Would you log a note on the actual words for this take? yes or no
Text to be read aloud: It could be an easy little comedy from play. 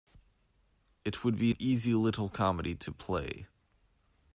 yes